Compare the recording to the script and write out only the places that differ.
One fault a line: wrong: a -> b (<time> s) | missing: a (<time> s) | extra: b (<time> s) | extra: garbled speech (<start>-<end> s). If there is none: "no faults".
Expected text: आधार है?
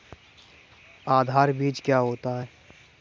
extra: बीज क्या होता (1.5 s)